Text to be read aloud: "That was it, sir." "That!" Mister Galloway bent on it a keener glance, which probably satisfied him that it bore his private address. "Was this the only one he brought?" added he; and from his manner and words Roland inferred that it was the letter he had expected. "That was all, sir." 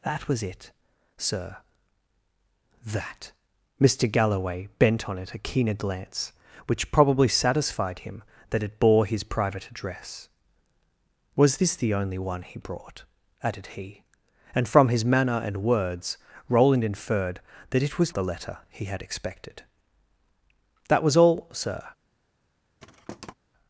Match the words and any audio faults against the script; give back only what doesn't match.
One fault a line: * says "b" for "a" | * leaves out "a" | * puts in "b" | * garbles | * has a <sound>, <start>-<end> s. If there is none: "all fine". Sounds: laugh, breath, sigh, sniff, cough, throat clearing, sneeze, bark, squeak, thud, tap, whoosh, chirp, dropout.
* has a thud, 22.8-23.3 s